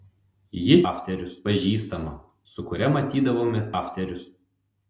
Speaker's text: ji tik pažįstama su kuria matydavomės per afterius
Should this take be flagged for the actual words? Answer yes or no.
yes